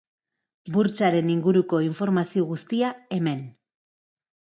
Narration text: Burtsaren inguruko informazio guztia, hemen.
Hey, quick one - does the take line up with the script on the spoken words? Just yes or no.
yes